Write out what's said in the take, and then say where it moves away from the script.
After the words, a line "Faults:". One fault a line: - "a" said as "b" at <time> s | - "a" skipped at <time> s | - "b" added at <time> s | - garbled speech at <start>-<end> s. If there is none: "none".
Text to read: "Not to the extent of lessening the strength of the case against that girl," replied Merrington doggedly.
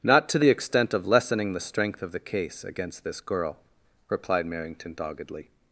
"Not to the extent of lessening the strength of the case against this girl," replied Merrington doggedly.
Faults:
- "that" said as "this" at 3.0 s